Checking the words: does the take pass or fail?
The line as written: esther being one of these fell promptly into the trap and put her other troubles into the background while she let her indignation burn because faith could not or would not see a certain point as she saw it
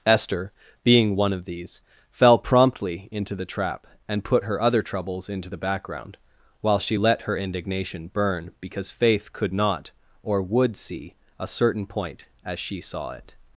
fail